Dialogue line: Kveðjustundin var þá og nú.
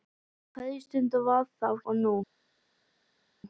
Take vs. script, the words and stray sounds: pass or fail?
pass